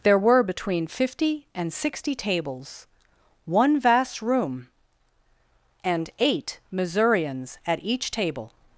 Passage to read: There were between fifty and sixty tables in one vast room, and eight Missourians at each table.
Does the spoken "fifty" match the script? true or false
true